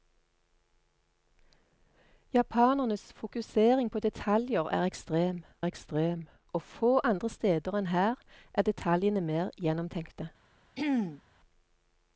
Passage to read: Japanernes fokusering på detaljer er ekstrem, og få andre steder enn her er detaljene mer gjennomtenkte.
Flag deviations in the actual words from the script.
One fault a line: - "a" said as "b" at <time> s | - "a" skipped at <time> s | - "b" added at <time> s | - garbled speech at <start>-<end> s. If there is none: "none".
- "ekstrem" added at 5.7 s